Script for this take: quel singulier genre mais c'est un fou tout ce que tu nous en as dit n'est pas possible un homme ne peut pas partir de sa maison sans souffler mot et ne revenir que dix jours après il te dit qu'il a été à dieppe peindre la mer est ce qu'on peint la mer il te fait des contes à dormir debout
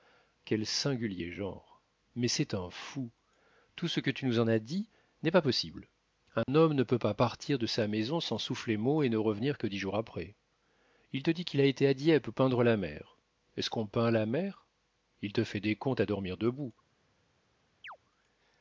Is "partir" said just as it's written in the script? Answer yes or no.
yes